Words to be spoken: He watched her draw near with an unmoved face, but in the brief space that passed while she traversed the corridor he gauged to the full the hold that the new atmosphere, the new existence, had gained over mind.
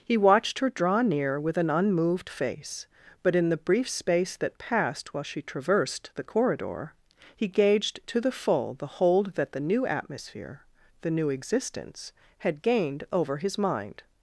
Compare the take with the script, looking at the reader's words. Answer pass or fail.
fail